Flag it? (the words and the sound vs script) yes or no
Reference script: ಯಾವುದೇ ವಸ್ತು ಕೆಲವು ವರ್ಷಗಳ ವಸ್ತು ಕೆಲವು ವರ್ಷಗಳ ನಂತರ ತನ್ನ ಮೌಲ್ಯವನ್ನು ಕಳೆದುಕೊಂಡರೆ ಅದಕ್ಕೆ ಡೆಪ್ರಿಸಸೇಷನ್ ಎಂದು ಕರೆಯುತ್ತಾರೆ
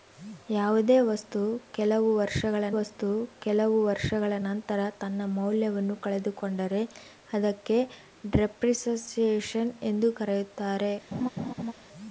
yes